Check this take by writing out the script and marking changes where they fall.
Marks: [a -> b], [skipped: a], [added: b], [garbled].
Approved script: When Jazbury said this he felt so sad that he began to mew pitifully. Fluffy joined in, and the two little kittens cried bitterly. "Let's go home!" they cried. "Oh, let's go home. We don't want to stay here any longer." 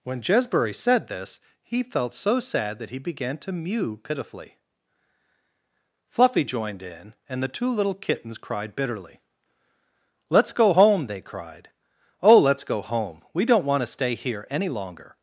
When Jazbury said this he felt so sad that he began to mew pitifully. Fluffy joined in, and the two little kittens cried bitterly. "Let's go home!" they cried. "Oh, let's go home. We don't want to stay here any longer."